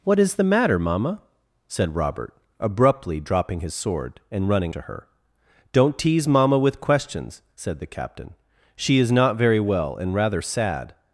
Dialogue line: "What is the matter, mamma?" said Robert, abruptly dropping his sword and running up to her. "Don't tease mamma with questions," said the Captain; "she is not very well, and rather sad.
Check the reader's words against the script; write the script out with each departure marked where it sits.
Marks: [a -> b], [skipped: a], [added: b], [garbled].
"What is the matter, mamma?" said Robert, abruptly dropping his sword and running [skipped: up] to her. "Don't tease mamma with questions," said the Captain; "she is not very well, and rather sad.